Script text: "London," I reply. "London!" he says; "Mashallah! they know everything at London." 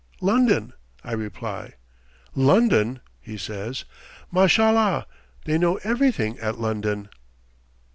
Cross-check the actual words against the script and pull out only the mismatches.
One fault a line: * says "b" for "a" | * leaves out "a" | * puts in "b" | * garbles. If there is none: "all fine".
all fine